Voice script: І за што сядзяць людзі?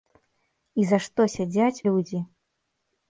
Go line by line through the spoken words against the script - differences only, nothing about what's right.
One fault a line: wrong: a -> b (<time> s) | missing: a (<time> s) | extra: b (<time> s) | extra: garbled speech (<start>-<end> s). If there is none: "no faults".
no faults